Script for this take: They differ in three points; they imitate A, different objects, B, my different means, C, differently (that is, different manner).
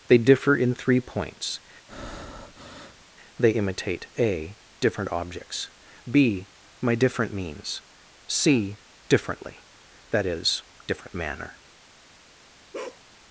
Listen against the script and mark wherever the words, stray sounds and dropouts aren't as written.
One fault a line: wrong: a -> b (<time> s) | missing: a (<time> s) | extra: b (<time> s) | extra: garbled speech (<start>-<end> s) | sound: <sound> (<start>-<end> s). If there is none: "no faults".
sound: breath (1.9-3.0 s)
sound: bark (12.7-13.0 s)